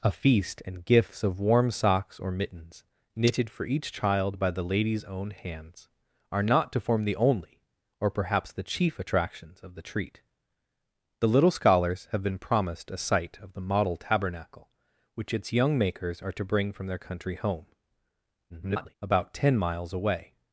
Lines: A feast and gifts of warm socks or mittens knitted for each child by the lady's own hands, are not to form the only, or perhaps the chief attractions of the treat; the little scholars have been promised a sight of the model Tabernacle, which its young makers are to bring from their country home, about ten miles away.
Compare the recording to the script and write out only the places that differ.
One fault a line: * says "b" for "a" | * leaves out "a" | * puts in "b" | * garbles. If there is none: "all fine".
* garbles